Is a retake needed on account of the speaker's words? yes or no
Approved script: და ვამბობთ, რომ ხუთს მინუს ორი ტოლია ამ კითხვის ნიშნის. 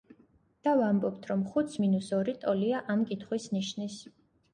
no